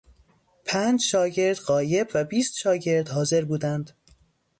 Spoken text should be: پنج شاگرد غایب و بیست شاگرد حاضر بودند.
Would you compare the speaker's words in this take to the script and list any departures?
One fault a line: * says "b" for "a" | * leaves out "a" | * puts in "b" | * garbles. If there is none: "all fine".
all fine